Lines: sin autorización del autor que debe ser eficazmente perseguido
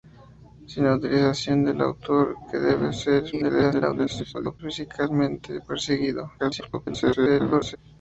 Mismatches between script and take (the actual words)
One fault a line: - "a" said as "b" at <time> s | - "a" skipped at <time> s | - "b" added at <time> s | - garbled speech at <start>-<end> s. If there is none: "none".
- garbled speech at 3.3-4.6 s
- garbled speech at 6.4-7.8 s